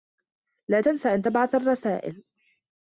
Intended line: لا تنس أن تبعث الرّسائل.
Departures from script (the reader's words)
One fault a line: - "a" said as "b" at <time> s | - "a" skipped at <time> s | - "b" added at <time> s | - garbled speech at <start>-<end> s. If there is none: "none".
none